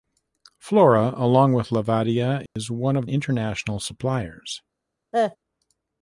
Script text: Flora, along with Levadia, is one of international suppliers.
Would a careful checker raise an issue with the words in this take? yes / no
no